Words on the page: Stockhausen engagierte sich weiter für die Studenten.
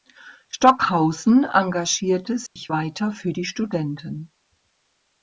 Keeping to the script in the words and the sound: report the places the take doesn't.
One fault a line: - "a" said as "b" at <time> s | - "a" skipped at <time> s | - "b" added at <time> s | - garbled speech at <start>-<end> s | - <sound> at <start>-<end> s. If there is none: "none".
- dropout at 2.5-2.6 s